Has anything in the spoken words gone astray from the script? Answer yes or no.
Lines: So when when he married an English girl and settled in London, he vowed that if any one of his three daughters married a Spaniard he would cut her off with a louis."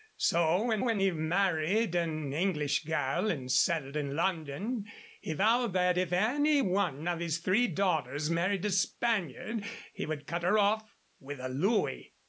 no